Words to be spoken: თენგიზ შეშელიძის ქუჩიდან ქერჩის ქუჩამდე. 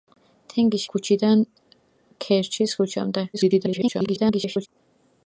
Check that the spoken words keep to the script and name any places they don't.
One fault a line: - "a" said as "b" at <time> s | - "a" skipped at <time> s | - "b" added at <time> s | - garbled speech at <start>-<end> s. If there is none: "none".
- "შეშელიძის" skipped at 0.8 s
- garbled speech at 3.3-4.7 s